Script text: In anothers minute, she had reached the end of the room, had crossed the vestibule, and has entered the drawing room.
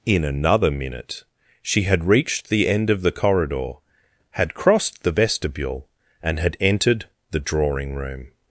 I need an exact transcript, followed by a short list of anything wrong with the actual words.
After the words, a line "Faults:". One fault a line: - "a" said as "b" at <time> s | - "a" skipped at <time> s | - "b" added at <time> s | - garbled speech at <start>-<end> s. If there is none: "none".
In another minute, she had reached the end of the corridor, had crossed the vestibule, and had entered the drawing room.
Faults:
- "anothers" said as "another" at 0.2 s
- "room" said as "corridor" at 3.1 s
- "has" said as "had" at 6.4 s